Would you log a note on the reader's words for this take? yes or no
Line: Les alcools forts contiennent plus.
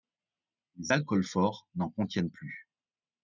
yes